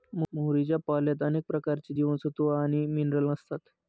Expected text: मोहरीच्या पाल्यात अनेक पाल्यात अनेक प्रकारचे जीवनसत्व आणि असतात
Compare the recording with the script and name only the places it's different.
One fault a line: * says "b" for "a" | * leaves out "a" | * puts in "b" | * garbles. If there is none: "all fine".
* leaves out "पाल्यात अनेक"
* puts in "मिनरल"